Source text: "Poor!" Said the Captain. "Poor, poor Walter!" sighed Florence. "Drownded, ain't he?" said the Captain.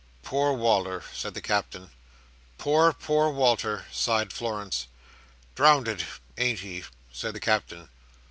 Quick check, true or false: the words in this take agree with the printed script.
false